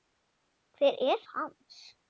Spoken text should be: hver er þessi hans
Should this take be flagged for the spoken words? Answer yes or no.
yes